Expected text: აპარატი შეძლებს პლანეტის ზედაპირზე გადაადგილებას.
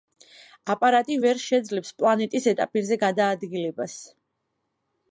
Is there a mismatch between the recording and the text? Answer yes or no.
yes